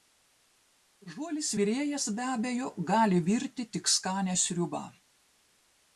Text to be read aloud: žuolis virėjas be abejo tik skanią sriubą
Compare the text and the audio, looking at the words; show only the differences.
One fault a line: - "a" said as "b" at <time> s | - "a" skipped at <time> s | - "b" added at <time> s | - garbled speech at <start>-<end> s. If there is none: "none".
- "gali virti" added at 2.9 s